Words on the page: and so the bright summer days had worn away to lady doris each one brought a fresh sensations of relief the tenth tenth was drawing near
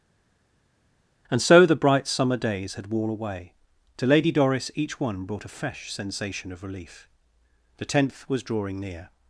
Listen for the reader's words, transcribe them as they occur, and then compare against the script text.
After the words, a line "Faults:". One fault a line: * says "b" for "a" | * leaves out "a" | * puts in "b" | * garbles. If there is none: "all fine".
and so the bright summer days had worn away to lady doris each one brought a fresh sensation of relief the tenth was drawing near
Faults:
* says "sensation" for "sensations"
* leaves out "tenth"